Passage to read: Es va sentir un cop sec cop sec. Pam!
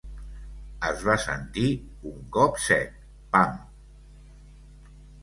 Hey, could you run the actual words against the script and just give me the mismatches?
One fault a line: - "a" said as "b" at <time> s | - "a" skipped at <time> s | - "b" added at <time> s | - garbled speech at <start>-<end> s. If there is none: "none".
- "cop sec" skipped at 3.0 s